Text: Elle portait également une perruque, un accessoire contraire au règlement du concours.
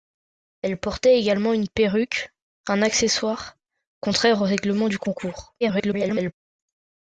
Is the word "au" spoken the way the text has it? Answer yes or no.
yes